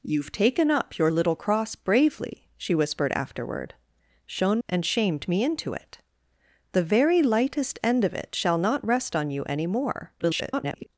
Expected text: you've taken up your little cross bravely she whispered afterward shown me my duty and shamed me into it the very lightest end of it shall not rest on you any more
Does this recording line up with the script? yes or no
no